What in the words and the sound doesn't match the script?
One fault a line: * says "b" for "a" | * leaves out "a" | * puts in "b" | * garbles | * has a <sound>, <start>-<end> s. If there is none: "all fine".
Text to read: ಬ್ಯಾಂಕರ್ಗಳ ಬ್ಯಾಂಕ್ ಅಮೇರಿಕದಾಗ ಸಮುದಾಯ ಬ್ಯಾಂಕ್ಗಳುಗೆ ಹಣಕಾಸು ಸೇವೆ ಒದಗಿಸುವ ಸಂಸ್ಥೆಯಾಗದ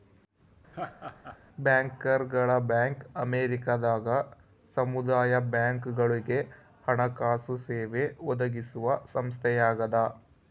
* has a laugh, 0.7-1.4 s